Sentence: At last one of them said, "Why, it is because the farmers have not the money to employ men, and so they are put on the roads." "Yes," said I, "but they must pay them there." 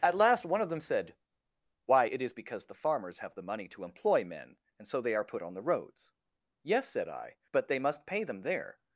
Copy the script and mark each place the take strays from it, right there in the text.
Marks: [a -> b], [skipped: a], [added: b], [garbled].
At last one of them said, "Why, it is because the farmers have [skipped: not] the money to employ men, and so they are put on the roads." "Yes," said I, "but they must pay them there."